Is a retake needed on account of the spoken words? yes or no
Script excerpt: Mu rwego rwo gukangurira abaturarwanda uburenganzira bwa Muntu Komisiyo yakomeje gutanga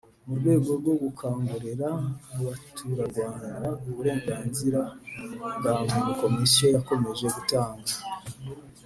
no